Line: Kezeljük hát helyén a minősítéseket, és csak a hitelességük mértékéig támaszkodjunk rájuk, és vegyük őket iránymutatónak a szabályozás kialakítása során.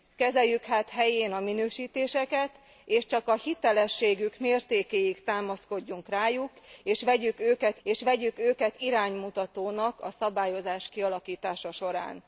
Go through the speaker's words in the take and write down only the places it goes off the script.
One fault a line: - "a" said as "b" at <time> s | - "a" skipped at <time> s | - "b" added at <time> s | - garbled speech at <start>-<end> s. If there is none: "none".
- "és vegyük őket" added at 7.8 s